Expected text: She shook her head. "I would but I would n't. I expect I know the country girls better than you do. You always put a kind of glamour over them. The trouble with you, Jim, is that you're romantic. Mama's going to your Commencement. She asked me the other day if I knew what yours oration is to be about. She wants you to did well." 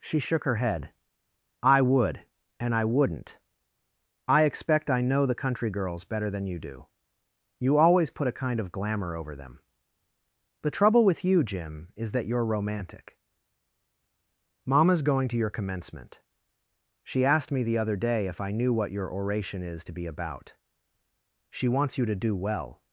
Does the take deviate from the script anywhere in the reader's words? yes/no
yes